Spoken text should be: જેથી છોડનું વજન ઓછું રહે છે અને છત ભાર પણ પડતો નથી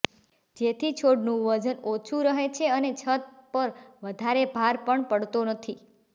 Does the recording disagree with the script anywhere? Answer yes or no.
yes